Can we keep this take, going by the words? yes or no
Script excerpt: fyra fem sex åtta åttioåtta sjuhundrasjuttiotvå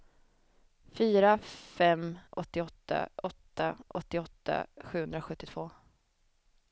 no